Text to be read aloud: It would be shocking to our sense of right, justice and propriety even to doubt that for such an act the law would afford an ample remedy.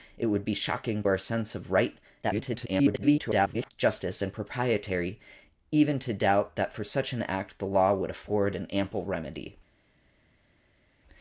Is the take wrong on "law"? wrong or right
right